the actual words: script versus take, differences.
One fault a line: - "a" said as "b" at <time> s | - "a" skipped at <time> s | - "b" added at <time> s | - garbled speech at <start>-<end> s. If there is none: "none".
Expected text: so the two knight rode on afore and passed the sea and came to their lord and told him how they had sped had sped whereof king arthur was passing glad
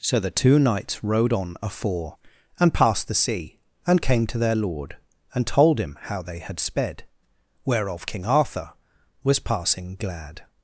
- "knight" said as "knights" at 0.6 s
- "had sped" skipped at 7.0 s